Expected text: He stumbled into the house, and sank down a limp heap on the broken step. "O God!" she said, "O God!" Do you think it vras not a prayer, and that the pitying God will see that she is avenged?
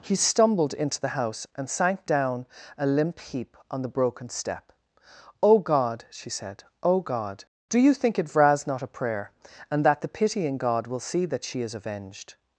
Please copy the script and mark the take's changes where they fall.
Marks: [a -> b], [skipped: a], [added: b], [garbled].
He stumbled into the house, and sank down a limp heap on the broken step. "O God!" she said, "O God!" Do you think it vras not a prayer, and that the pitying God will see that she is avenged?